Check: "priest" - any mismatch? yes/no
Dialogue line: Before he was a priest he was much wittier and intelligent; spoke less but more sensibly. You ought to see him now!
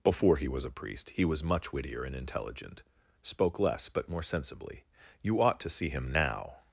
no